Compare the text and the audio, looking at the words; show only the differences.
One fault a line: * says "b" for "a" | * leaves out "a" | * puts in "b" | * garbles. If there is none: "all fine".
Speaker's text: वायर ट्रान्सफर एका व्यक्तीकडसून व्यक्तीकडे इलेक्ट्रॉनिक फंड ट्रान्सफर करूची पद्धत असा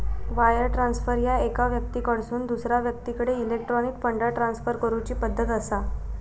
* puts in "ह्या"
* puts in "दुसरा"